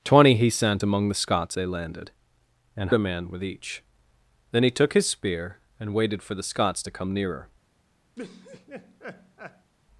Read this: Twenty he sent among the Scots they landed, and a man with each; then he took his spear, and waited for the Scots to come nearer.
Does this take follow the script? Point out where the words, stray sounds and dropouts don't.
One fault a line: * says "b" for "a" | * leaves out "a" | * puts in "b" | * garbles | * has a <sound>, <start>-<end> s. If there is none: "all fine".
* has a laugh, 8.2-9.7 s